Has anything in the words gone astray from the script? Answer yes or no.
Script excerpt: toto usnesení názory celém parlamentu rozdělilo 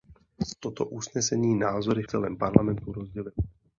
no